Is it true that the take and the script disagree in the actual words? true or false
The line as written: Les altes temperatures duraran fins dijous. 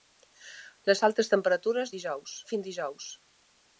true